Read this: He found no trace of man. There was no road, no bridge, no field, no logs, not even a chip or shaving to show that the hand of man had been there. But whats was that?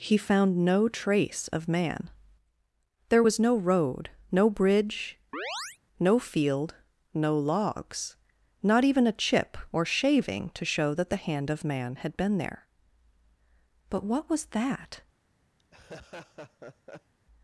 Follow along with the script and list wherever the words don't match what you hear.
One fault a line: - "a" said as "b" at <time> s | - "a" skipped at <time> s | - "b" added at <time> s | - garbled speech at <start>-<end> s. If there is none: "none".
- "whats" said as "what" at 14.0 s